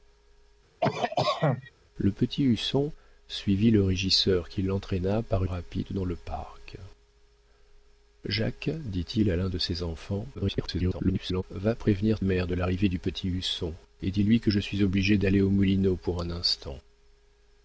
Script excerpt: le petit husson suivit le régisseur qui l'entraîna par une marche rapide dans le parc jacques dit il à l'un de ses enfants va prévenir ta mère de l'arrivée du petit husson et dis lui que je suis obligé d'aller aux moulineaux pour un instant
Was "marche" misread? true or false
true